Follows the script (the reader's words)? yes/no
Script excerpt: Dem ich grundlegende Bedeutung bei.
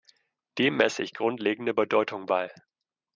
no